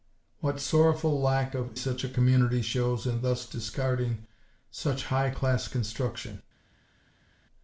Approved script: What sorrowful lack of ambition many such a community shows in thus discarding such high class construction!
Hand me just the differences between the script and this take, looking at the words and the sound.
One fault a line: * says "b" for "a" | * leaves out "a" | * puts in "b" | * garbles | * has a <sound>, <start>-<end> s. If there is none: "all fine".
* leaves out "ambition many"